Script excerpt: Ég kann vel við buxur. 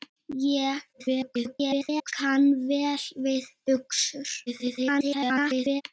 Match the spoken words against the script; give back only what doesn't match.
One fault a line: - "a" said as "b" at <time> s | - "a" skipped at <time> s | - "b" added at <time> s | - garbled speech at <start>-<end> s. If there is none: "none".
- garbled speech at 0.9-2.1 s
- garbled speech at 4.5-5.8 s